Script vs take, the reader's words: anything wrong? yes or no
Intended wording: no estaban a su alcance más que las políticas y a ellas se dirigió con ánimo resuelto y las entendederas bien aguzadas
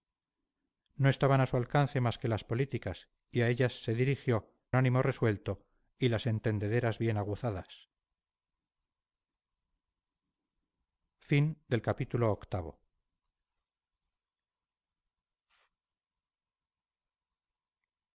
yes